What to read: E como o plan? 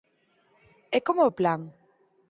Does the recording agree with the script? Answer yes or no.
yes